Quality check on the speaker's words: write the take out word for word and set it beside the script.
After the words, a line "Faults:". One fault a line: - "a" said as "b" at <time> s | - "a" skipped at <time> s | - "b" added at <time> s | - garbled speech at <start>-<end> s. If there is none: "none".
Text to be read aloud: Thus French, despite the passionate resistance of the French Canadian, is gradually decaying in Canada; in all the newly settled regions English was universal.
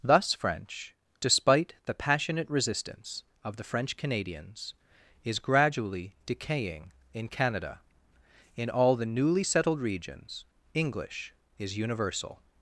Thus French, despite the passionate resistance of the French Canadians, is gradually decaying in Canada; in all the newly settled regions English is universal.
Faults:
- "Canadian" said as "Canadians" at 4.0 s
- "was" said as "is" at 11.6 s